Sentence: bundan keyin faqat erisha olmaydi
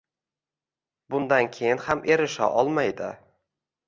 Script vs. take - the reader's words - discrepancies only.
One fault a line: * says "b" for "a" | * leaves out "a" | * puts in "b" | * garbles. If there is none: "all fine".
* says "ham" for "faqat"